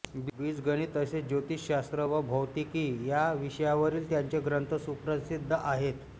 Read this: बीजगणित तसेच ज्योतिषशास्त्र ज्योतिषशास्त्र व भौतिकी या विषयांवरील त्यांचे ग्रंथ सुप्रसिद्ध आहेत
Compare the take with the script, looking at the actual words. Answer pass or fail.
fail